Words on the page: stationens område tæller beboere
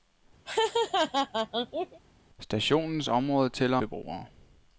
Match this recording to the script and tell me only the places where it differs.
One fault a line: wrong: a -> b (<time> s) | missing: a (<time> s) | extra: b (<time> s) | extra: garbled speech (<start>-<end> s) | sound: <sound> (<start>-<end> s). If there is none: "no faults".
sound: laugh (0.5-2.0 s)